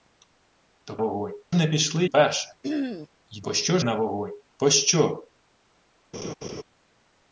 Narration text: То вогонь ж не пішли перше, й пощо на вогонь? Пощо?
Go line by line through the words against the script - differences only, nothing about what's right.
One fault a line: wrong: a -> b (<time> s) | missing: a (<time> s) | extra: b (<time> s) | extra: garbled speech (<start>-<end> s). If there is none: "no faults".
no faults